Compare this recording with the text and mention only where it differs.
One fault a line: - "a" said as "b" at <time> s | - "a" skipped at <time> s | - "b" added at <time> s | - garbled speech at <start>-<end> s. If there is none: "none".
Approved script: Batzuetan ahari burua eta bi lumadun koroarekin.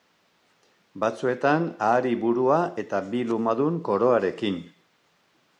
none